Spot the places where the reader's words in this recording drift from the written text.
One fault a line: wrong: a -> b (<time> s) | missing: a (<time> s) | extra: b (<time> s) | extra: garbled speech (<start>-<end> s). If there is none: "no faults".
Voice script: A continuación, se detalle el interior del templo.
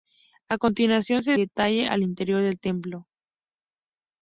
no faults